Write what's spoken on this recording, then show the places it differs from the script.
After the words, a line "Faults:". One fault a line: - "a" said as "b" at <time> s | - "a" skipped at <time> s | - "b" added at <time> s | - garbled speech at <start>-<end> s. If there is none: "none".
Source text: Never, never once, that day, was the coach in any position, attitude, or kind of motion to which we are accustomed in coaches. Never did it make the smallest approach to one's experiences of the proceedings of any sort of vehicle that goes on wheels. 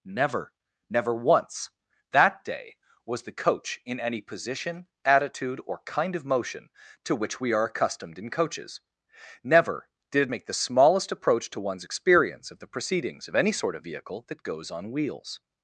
Never, never once, that day, was the coach in any position, attitude, or kind of motion to which we are accustomed in coaches. Never did it make the smallest approach to one's experience of the proceedings of any sort of vehicle that goes on wheels.
Faults:
- "experiences" said as "experience" at 11.8 s